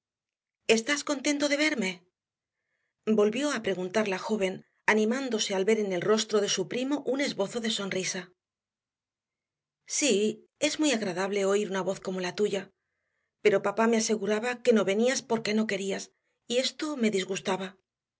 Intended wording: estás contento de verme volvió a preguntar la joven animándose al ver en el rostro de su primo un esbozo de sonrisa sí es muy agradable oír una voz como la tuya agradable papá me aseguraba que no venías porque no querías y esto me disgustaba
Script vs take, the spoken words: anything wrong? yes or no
yes